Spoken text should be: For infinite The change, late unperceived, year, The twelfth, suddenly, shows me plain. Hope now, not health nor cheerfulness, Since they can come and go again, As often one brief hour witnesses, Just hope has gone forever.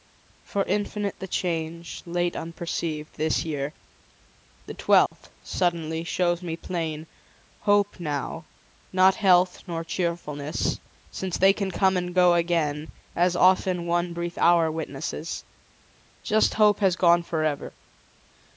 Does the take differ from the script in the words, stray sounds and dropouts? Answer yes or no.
yes